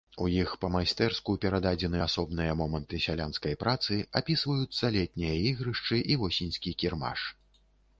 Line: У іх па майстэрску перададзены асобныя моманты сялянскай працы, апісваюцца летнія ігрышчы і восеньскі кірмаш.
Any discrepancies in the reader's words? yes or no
no